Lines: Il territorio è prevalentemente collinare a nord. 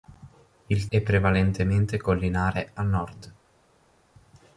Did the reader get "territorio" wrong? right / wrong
wrong